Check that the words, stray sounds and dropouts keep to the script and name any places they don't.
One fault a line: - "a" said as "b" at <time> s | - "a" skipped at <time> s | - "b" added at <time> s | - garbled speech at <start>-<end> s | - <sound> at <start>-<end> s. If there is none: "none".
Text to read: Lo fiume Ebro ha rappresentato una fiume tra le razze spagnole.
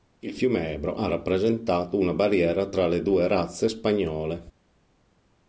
- "Lo" said as "Il" at 0.2 s
- "fiume" said as "barriera" at 2.1 s
- "due" added at 3.0 s